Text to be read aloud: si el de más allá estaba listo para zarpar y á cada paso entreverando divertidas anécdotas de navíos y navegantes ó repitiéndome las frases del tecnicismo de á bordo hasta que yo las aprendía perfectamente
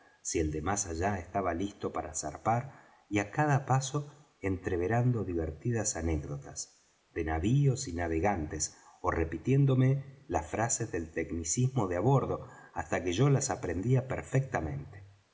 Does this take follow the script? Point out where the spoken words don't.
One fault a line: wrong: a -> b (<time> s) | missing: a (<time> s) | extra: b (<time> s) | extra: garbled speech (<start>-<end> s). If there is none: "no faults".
no faults